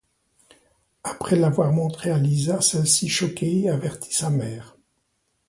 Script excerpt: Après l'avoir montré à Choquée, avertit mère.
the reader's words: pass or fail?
fail